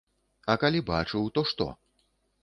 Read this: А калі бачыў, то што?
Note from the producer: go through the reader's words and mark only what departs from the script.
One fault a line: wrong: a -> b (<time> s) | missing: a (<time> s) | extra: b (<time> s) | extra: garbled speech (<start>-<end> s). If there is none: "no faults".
no faults